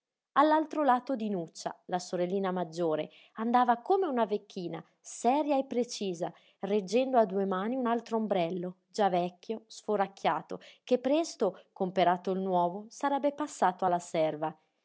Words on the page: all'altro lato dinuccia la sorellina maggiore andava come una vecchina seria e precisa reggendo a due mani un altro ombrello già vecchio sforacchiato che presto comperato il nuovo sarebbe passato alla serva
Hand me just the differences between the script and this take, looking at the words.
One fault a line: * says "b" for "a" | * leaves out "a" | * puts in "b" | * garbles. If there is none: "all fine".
all fine